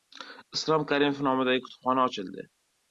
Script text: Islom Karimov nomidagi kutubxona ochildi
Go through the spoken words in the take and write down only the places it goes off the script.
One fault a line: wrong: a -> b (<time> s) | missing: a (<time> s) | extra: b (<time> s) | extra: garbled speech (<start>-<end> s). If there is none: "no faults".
no faults